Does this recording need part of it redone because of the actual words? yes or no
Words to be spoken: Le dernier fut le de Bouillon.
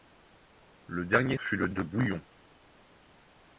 no